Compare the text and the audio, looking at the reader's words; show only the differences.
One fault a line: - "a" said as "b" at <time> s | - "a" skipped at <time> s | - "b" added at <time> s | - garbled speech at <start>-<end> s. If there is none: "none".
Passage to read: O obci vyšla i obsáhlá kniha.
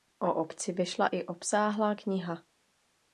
none